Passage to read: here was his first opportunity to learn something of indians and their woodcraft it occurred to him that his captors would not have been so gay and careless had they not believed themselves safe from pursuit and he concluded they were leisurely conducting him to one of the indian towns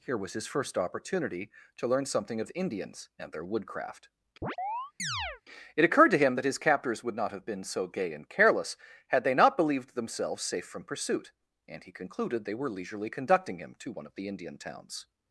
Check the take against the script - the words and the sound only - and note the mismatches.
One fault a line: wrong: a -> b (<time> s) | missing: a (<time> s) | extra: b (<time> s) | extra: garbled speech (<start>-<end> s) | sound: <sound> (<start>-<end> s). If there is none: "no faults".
sound: chirp (4.4-5.4 s)